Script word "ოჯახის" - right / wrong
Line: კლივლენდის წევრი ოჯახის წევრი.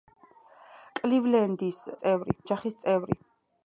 right